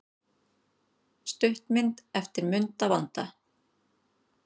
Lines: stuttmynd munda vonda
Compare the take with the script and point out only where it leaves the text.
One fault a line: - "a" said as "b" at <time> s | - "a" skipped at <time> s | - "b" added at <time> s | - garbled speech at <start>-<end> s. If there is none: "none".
- "eftir" added at 2.2 s